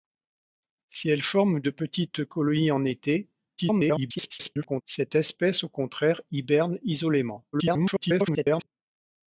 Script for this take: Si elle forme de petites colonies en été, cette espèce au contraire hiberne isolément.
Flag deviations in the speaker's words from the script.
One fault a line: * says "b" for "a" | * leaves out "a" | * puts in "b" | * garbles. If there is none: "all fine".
* garbles
* garbles